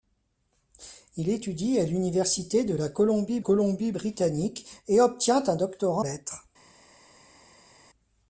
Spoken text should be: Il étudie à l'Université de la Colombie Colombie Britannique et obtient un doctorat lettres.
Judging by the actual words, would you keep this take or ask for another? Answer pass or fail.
pass